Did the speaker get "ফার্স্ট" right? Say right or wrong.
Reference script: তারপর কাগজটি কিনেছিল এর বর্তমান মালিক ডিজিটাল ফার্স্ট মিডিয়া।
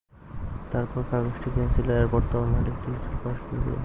right